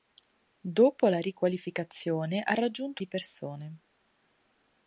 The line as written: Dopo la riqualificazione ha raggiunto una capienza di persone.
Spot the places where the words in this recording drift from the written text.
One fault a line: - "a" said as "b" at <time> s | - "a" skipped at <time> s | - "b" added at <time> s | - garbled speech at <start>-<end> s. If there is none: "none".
- "una capienza" skipped at 3.0 s